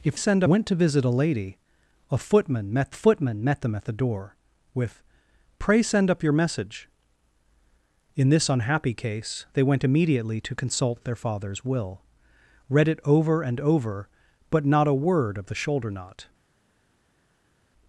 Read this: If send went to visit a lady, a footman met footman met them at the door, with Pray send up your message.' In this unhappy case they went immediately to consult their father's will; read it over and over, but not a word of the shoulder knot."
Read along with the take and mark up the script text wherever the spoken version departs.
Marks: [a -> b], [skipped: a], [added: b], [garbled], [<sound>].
If send went to visit a lady, a footman met footman met them at the door, with Pray send up your message.' In this unhappy case they went immediately to consult their father's will; read it over and over, but not a word of the shoulder knot."